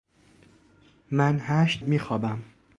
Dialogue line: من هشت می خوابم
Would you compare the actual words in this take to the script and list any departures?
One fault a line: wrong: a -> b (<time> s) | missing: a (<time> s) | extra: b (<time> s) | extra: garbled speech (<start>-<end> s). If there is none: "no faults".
no faults